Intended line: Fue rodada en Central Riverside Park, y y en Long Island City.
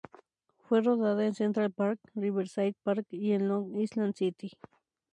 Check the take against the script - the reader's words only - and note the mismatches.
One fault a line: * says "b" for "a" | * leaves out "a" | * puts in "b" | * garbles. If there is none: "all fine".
* puts in "Park"
* leaves out "y"